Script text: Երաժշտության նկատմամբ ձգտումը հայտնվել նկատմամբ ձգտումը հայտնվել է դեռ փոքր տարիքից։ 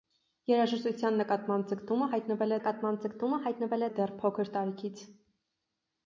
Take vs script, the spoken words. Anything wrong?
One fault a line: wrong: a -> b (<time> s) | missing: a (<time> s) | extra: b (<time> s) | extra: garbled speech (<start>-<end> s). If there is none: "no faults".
no faults